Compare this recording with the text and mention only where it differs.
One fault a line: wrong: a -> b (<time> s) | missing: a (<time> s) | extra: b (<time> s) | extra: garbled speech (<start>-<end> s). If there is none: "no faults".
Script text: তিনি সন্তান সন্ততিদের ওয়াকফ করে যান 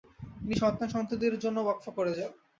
extra: জন্য (1.4 s)